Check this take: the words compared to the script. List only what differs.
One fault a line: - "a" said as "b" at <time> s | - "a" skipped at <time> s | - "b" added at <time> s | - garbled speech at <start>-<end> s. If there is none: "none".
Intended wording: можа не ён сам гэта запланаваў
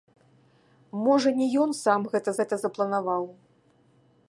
- "гэта" added at 2.4 s